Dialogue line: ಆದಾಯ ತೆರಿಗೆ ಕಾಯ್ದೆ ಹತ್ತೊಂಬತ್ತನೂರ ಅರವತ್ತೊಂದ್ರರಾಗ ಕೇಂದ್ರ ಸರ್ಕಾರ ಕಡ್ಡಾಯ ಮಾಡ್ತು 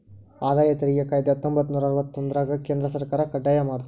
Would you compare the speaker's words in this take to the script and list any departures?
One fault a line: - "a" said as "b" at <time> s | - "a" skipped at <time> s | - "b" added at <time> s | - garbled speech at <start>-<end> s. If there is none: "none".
none